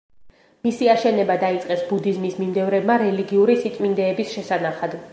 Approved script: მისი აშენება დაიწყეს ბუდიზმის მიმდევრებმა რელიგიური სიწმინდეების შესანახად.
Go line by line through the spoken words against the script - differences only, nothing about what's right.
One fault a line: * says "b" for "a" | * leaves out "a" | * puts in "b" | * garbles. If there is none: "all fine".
all fine